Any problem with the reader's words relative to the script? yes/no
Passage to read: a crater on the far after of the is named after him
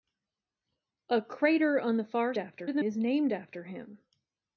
no